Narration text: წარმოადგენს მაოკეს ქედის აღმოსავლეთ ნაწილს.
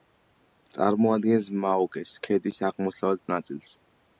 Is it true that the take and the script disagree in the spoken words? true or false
false